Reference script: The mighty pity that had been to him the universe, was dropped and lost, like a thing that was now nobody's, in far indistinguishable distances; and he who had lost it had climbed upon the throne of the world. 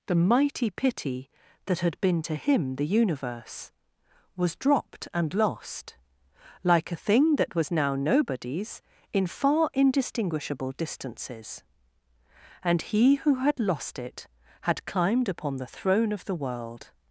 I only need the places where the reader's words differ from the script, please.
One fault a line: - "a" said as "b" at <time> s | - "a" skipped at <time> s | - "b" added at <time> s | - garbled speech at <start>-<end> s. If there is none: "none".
none